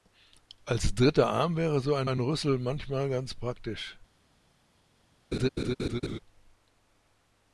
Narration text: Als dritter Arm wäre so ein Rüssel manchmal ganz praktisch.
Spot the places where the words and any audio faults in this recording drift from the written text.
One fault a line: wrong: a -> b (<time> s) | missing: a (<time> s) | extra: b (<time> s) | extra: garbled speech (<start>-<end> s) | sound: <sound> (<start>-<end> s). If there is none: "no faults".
extra: ein (2.0 s)
sound: laugh (5.3-6.2 s)